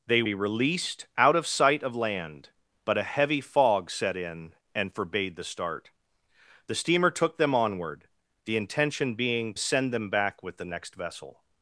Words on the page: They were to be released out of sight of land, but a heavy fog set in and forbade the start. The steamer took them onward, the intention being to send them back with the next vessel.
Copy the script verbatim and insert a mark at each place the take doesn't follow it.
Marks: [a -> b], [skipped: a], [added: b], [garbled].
They [skipped: were to] be released out of sight of land, but a heavy fog set in and forbade the start. The steamer took them onward, the intention being [skipped: to] send them back with the next vessel.